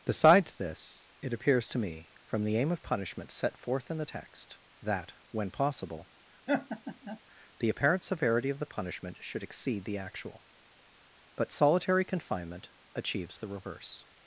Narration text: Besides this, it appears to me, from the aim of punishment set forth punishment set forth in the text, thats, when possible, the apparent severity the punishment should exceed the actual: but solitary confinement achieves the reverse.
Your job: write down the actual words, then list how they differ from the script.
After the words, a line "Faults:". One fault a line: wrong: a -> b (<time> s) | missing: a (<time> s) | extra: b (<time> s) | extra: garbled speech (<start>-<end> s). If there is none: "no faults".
Besides this, it appears to me, from the aim of punishment set forth in the text, that, when possible, the apparent severity of the punishment should exceed the actual: but solitary confinement achieves the reverse.
Faults:
missing: punishment set forth (3.9 s)
wrong: thats -> that (4.8 s)
extra: of (8.5 s)